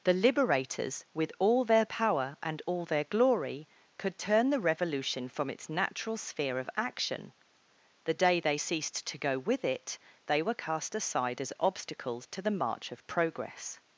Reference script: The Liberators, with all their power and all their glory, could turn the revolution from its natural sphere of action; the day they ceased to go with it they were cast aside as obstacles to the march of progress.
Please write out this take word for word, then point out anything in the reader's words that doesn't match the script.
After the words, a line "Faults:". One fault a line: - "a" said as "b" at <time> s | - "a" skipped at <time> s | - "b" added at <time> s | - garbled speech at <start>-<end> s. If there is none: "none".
The Liberators, with all their power and all their glory, could turn the revolution from its natural sphere of action; the day they ceased to go with it they were cast aside as obstacles to the march of progress.
Faults:
none